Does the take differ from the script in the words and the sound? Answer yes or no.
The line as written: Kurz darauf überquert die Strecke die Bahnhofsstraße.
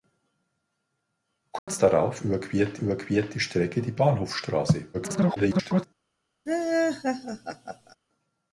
yes